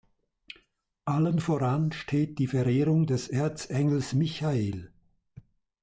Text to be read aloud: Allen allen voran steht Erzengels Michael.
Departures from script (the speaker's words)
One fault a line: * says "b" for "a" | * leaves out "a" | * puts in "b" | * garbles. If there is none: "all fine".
* leaves out "allen"
* puts in "die Verehrung des"